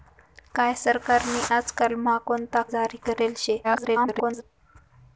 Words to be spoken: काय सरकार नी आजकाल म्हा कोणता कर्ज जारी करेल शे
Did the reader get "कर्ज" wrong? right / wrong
wrong